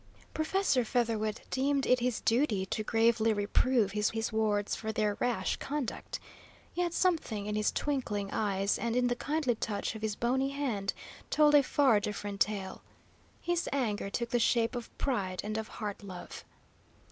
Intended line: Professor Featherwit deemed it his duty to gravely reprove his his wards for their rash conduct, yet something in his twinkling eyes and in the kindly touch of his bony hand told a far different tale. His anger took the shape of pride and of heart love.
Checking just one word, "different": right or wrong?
right